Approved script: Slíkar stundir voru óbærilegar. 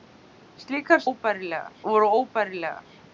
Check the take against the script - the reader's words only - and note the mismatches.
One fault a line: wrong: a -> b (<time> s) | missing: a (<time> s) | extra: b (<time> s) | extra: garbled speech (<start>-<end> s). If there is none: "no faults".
wrong: stundir -> óbærilegar (1.1 s)